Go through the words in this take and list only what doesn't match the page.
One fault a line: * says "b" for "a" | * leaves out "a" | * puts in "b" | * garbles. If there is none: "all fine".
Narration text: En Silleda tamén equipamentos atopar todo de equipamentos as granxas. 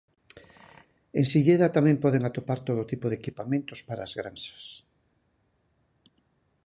* says "poden" for "equipamentos"
* puts in "tipo"
* puts in "para"